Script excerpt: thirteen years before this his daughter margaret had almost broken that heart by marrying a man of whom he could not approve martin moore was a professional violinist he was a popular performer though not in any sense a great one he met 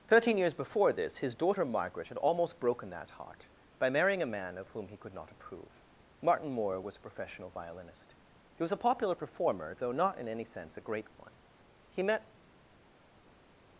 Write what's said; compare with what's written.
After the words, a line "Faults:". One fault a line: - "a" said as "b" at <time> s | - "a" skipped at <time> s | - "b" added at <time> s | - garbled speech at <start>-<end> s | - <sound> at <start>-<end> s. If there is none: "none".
thirteen years before this his daughter margaret had almost broken that heart by marrying a man of whom he could not approve martin moore was a professional violinist he was a popular performer though not in any sense a great one he met
Faults:
none